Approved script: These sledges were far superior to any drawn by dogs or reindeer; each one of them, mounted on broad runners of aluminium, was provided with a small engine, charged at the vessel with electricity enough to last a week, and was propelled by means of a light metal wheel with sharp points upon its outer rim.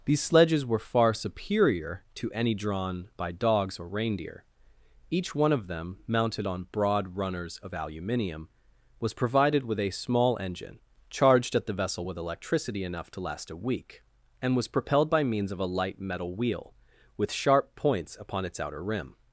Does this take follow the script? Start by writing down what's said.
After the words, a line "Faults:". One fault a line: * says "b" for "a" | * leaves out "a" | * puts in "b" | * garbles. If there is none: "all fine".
These sledges were far superior to any drawn by dogs or reindeer; each one of them, mounted on broad runners of aluminium, was provided with a small engine, charged at the vessel with electricity enough to last a week, and was propelled by means of a light metal wheel with sharp points upon its outer rim.
Faults:
all fine